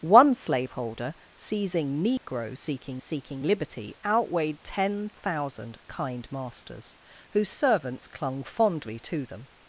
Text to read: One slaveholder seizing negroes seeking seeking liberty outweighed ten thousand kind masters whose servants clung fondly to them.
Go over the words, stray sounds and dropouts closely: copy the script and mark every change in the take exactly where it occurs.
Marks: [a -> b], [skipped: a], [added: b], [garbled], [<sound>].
One slaveholder seizing negroes [dropout] seeking seeking liberty outweighed ten thousand kind masters whose servants clung fondly to them.